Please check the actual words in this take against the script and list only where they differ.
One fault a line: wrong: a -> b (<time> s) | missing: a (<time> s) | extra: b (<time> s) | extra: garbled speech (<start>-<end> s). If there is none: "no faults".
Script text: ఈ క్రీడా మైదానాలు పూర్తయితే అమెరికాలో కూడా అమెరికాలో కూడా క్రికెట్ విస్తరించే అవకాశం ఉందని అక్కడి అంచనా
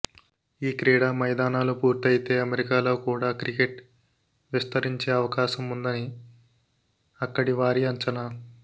missing: అమెరికాలో కూడా (3.3 s)
extra: వారి (7.6 s)